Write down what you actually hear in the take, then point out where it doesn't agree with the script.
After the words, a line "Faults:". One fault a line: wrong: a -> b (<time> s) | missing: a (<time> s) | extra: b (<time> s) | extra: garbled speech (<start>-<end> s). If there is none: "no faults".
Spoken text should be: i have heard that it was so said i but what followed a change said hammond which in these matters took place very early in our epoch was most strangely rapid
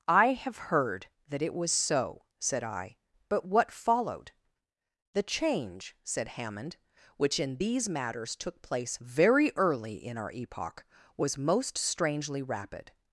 i have heard that it was so said i but what followed the change said hammond which in these matters took place very early in our epoch was most strangely rapid
Faults:
wrong: a -> the (5.1 s)